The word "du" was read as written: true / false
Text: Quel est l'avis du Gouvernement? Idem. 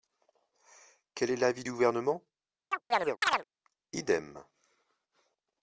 true